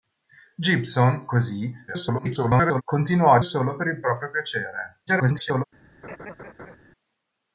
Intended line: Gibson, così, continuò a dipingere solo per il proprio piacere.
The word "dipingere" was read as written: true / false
false